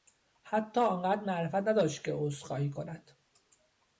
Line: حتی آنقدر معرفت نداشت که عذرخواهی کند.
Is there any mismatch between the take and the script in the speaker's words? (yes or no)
no